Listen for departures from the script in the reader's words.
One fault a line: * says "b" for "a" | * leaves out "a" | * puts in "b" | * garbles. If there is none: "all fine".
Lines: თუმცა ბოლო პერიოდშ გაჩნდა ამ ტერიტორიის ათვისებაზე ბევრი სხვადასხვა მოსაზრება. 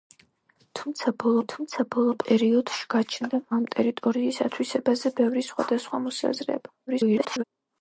* puts in "თუმცა ბოლო"
* garbles